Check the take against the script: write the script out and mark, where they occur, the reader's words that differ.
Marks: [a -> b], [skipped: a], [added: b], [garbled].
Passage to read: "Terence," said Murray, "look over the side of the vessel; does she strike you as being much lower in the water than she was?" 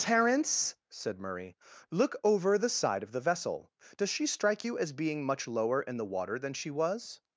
"Terence," said Murray, "look over the side of the vessel; does she strike you as being much lower in the water than she was?"